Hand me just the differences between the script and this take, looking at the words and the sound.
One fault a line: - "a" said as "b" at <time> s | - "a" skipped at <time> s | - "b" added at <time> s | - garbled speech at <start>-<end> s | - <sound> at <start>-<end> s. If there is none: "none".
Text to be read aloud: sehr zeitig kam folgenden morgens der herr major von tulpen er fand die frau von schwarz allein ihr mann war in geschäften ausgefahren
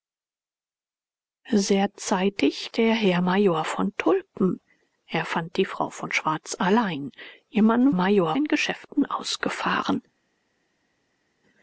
- "kam folgenden morgens" skipped at 2.7 s
- "war" said as "major" at 7.9 s